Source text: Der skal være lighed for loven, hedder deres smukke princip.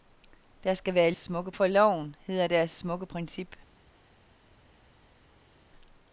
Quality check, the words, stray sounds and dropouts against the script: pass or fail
fail